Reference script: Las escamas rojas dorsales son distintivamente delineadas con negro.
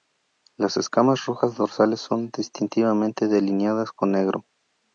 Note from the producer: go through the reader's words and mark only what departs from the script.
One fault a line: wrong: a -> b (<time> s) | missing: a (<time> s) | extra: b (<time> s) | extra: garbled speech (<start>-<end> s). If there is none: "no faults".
no faults